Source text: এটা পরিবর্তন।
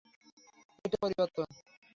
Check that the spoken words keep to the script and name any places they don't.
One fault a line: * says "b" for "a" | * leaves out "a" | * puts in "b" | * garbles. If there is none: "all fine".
all fine